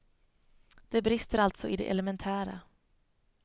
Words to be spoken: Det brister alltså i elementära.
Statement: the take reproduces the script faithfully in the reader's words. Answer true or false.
false